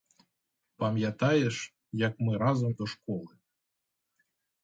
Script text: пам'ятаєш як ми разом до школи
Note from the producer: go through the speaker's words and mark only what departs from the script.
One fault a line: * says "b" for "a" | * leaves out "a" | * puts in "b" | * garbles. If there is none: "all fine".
all fine